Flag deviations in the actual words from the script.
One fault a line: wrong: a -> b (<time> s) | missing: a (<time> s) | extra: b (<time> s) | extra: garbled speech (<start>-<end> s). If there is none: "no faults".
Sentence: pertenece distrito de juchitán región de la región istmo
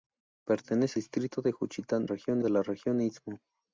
no faults